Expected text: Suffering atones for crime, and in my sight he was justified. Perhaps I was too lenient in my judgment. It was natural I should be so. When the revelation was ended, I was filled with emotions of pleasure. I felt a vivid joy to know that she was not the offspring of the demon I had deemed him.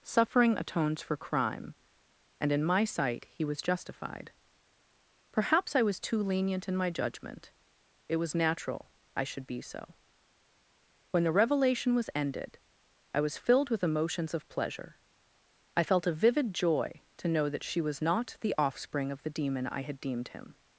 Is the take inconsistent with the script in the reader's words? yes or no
no